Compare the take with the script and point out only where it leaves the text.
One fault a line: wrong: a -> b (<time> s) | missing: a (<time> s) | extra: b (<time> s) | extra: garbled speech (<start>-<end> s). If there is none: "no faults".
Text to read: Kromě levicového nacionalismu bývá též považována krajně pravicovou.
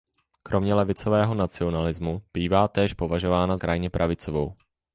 no faults